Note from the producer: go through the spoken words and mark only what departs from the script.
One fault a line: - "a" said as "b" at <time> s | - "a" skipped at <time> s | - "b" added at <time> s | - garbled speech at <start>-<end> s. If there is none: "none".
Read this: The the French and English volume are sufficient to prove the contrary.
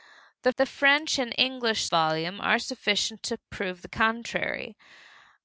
none